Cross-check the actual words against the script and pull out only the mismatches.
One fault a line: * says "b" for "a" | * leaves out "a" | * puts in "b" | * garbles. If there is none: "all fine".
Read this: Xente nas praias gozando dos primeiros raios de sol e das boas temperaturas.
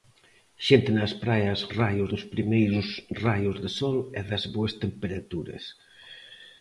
* says "raios" for "gozando"